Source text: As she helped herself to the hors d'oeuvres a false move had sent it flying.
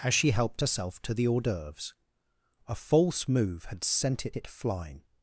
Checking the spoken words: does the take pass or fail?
fail